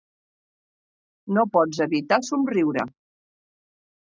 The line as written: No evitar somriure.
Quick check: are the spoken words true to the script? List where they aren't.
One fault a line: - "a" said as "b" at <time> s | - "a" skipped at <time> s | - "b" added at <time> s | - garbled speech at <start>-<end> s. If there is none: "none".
- "pots" added at 1.6 s